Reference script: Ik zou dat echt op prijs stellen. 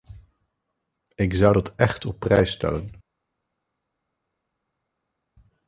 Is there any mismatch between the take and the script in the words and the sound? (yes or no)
no